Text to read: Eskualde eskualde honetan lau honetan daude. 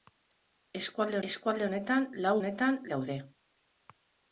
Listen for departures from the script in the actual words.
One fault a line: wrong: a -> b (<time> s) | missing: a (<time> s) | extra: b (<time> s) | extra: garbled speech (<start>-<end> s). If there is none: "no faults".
no faults